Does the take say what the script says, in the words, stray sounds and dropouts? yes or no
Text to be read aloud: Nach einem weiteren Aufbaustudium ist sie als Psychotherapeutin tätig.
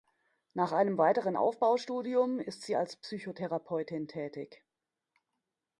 yes